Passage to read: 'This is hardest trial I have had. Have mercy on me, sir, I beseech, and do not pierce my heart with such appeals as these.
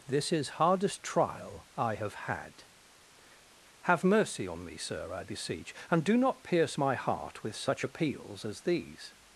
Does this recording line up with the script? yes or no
yes